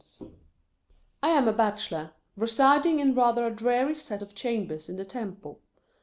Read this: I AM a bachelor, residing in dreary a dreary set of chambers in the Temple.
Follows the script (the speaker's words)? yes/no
no